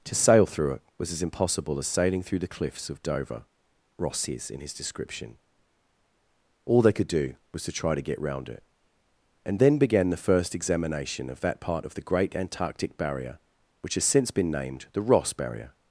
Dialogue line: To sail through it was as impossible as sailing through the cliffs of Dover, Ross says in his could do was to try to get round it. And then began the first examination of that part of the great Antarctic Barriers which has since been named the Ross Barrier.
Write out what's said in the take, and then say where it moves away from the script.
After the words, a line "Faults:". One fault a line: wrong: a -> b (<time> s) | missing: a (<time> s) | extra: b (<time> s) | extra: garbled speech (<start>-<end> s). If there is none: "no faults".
To sail through it was as impossible as sailing through the cliffs of Dover, Ross says in his description. All they could do was to try to get round it. And then began the first examination of that part of the great Antarctic Barrier which has since been named the Ross Barrier.
Faults:
extra: description All they (4.7 s)
wrong: Barriers -> Barrier (13.0 s)